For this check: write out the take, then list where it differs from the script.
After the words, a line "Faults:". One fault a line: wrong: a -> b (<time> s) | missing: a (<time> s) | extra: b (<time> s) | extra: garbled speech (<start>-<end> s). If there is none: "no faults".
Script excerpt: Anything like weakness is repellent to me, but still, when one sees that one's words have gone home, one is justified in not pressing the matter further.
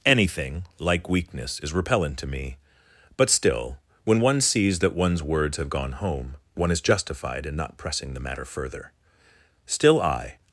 Anything like weakness is repellent to me, but still, when one sees that one's words have gone home, one is justified in not pressing the matter further. Still, I
Faults:
extra: Still I (9.7 s)